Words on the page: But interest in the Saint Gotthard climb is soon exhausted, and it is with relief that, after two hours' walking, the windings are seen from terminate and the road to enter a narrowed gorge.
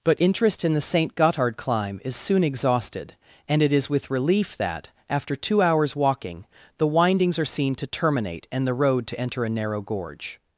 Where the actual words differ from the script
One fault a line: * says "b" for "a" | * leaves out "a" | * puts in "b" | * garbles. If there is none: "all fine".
* says "to" for "from"
* says "narrow" for "narrowed"